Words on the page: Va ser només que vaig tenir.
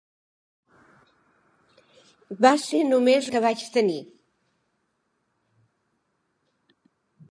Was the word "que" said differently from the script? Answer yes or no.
no